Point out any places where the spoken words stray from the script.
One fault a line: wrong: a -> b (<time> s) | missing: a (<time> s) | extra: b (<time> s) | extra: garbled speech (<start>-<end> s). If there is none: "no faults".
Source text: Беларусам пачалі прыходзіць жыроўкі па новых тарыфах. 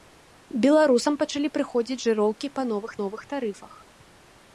extra: новых (3.0 s)